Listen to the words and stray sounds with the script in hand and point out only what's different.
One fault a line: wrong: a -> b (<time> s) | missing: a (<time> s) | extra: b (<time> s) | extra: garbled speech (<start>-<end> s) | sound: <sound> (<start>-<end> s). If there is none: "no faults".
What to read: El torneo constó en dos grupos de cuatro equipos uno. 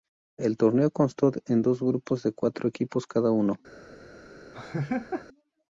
extra: cada (3.1 s)
sound: laugh (4.5-5.3 s)